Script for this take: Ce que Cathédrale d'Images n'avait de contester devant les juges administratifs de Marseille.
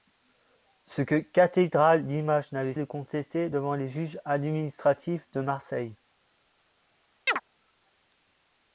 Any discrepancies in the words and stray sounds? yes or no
yes